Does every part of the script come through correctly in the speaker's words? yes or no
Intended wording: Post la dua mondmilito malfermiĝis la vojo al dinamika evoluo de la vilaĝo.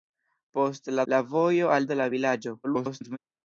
no